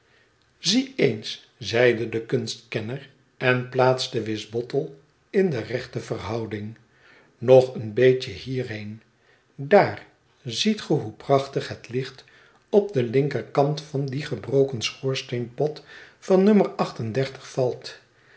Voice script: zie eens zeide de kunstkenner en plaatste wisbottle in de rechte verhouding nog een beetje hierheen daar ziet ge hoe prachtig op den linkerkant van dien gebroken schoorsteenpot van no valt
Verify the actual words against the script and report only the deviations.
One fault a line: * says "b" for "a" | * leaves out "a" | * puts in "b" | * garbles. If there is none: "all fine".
* puts in "het licht"